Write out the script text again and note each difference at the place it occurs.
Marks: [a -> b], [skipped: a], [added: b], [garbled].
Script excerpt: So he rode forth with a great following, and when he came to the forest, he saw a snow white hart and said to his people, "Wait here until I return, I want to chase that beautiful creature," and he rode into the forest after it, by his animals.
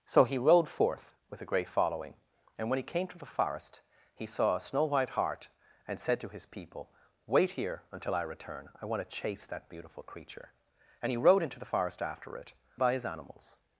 So he rode forth with a great following, and when he came to the forest, he saw a snow white hart and said to his people, "Wait here until I return, I want to chase that beautiful creature," and he rode into the forest after it, by his animals.